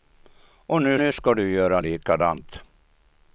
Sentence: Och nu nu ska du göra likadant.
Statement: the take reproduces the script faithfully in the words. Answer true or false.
true